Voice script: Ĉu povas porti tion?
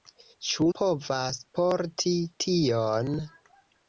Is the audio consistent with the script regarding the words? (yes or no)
yes